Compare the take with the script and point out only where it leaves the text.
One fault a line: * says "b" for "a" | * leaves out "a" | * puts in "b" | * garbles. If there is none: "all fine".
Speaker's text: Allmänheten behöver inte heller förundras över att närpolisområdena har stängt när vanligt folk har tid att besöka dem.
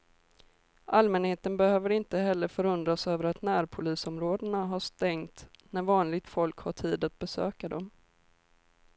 all fine